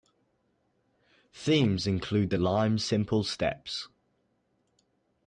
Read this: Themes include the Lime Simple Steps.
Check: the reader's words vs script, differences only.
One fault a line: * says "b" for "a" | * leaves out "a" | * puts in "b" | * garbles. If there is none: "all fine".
all fine